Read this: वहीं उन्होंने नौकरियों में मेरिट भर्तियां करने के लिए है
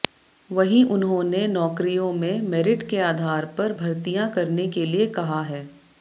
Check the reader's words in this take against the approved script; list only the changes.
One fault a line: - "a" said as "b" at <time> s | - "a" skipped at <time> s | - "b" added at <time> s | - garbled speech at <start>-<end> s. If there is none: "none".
- "के आधार पर" added at 2.9 s
- "कहा" added at 5.1 s